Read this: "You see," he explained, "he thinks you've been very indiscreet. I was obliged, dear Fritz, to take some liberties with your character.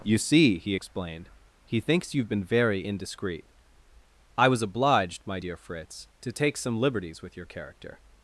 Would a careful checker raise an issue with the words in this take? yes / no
yes